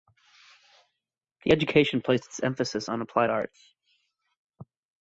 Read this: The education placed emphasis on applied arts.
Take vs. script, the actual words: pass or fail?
fail